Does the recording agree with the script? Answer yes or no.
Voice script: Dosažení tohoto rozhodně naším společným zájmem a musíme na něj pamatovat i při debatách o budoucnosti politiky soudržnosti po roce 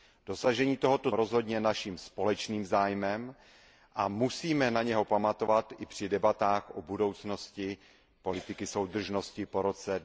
yes